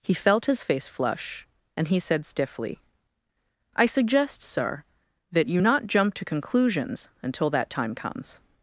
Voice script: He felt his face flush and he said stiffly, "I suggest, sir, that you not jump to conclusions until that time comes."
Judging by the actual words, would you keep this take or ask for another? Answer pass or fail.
pass